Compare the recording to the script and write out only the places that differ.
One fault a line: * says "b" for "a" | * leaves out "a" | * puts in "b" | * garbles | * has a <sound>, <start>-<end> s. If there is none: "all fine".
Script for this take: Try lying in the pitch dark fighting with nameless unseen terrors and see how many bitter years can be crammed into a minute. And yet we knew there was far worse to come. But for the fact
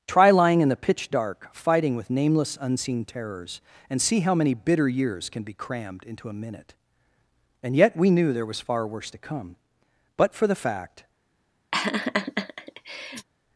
* has a laugh, 11.7-13.3 s